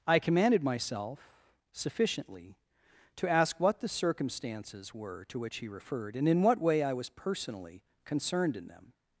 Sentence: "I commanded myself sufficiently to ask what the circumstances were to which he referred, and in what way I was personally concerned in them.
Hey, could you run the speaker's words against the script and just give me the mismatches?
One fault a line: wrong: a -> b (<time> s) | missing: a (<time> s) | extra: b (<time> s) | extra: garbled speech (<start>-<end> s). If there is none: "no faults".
no faults